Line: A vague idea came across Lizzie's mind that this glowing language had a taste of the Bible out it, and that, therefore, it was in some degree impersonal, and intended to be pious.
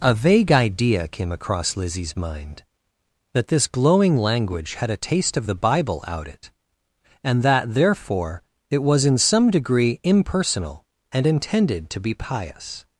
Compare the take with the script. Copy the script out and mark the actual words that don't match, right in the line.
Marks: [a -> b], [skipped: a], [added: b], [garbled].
A vague idea came across Lizzie's mind that this glowing language had a taste of the Bible out it, and that, therefore, it was in some degree impersonal, and intended to be pious.